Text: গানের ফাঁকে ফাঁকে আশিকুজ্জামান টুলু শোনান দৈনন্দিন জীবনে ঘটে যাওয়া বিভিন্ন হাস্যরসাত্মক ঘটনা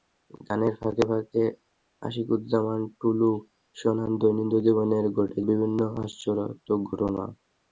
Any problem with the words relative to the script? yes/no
yes